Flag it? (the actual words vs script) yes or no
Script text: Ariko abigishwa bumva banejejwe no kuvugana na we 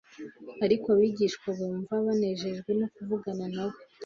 no